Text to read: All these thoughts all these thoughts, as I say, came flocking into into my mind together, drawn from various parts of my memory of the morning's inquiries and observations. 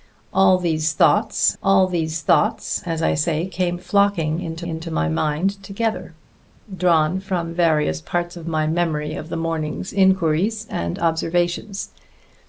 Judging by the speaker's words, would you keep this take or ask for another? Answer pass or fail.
pass